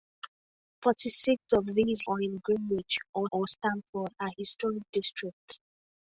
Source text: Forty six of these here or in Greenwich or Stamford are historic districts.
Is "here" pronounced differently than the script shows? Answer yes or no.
yes